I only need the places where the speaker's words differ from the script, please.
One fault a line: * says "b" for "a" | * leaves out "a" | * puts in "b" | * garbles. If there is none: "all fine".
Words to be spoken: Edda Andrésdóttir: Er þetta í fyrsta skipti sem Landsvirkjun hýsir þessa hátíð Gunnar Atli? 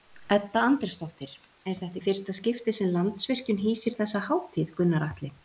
all fine